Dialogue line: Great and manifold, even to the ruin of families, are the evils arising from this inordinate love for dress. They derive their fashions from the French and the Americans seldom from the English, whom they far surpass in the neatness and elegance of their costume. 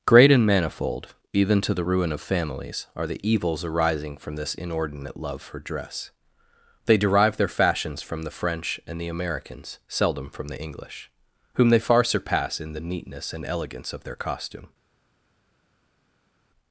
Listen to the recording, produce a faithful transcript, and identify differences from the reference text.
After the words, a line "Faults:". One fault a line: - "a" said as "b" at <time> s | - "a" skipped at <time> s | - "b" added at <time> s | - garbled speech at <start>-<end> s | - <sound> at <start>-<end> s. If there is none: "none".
Great and manifold, even to the ruin of families, are the evils arising from this inordinate love for dress. They derive their fashions from the French and the Americans seldom from the English, whom they far surpass in the neatness and elegance of their costume.
Faults:
none